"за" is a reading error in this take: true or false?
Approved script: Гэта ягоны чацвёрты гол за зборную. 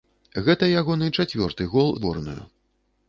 true